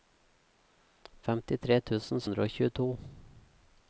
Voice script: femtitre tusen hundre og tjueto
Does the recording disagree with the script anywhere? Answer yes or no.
no